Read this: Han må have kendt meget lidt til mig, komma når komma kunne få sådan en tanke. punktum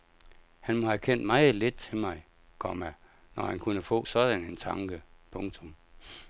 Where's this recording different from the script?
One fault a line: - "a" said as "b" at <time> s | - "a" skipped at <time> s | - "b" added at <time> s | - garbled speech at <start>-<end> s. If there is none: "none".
- "komma" said as "han" at 3.4 s